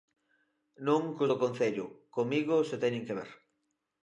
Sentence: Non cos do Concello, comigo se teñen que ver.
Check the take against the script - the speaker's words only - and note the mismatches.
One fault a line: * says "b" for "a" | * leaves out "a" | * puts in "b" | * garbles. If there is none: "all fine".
all fine